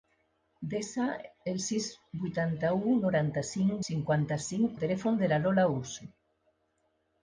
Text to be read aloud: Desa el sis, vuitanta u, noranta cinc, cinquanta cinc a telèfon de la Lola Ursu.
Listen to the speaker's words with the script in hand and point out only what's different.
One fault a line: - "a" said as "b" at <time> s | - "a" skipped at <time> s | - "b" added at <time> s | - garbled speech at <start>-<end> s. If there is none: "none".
none